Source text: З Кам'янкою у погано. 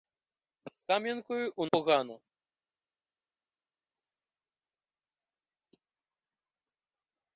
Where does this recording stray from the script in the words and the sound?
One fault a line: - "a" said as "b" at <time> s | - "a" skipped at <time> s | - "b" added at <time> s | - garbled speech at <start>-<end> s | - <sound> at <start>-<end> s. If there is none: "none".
none